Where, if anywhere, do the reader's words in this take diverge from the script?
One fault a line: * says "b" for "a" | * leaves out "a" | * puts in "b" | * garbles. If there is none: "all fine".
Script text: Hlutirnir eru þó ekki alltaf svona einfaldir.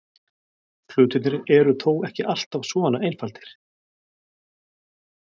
all fine